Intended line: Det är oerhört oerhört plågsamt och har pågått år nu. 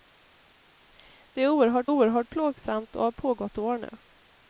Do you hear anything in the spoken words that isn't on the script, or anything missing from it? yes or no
no